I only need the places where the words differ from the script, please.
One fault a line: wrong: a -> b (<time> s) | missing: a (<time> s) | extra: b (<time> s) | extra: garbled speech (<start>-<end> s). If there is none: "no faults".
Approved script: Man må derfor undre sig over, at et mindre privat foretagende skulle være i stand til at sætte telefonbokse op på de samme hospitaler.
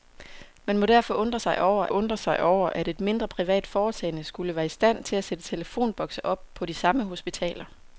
extra: undre sig over (1.9 s)